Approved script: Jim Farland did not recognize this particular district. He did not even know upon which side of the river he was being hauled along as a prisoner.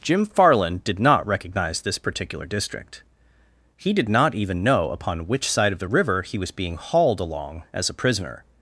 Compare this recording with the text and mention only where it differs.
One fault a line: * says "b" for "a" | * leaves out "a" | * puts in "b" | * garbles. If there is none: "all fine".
all fine